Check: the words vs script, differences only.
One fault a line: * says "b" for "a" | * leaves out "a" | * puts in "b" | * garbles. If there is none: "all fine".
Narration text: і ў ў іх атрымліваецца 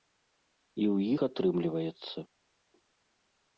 * leaves out "ў"